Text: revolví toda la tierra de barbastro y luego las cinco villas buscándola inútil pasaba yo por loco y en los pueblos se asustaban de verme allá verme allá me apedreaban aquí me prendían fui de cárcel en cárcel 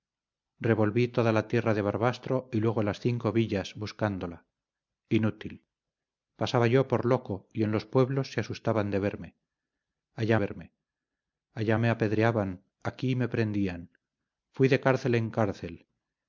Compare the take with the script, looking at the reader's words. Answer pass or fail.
pass